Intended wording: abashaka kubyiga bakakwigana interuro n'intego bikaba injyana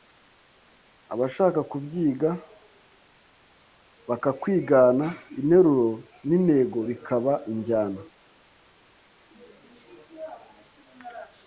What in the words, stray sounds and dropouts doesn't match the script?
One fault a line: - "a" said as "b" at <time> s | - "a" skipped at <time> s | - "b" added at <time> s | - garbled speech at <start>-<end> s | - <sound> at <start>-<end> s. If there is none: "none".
none